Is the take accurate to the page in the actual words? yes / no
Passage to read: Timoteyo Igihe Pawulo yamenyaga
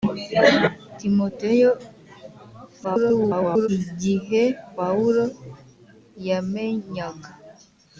no